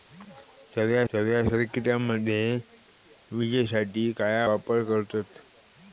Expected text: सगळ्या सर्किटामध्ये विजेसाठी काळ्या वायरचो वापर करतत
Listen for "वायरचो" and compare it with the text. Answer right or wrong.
wrong